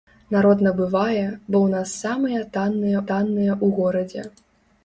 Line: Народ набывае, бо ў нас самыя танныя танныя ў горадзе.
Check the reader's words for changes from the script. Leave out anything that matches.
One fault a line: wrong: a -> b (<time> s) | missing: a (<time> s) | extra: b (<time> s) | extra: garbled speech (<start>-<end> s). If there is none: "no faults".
no faults